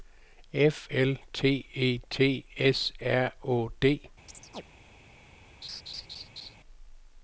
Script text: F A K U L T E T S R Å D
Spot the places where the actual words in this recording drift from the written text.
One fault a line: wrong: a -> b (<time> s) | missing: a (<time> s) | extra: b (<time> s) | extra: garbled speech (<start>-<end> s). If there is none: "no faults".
missing: A K U (0.9 s)